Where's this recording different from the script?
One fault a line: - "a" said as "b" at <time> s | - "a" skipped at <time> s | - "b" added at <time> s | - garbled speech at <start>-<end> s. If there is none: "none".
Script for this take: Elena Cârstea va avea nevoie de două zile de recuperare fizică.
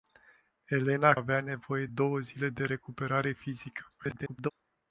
- "Cârstea va" skipped at 1.1 s
- "de" skipped at 1.9 s
- garbled speech at 4.0-4.5 s